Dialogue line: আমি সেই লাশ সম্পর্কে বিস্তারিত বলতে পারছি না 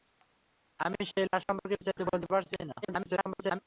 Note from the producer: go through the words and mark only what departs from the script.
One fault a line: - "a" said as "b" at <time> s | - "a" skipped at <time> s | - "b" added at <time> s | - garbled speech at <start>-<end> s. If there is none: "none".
- garbled speech at 2.8-3.6 s